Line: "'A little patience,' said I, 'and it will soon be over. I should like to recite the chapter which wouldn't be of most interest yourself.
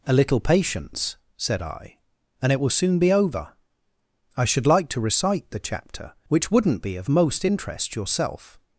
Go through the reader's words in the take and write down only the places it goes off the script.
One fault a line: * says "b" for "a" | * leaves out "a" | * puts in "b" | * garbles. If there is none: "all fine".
all fine